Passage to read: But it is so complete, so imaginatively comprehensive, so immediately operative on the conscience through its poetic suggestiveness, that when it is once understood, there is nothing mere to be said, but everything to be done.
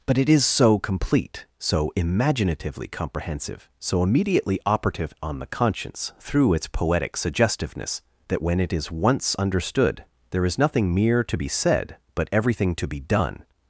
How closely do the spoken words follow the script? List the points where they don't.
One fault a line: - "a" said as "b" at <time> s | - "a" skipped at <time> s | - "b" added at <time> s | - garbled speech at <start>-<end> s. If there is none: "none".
none